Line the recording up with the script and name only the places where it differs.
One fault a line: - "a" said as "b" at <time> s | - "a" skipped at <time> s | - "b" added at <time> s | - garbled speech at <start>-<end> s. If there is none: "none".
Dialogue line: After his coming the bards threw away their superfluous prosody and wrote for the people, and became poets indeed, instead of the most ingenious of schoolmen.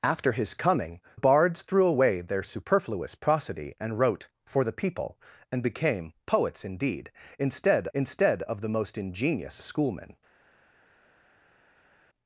- "the" skipped at 1.0 s
- "instead" added at 7.9 s
- "of" skipped at 9.6 s